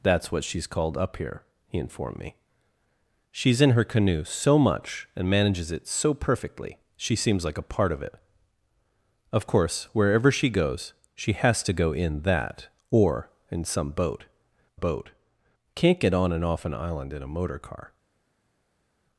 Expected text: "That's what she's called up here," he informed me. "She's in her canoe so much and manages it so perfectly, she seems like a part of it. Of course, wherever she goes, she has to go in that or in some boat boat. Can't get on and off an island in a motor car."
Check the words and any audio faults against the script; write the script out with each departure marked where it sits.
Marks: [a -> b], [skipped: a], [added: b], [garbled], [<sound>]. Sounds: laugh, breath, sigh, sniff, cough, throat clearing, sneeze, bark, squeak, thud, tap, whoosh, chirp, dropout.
"That's what she's called up here," he informed me. "She's in her canoe so much and manages it so perfectly, she seems like a part of it. Of course, wherever she goes, she has to go in that or in some boat boat. Can't get on and off an island in a motor car."